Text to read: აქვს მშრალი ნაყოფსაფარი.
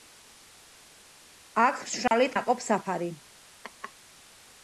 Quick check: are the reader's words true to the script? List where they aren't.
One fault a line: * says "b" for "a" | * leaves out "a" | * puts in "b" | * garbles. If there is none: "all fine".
all fine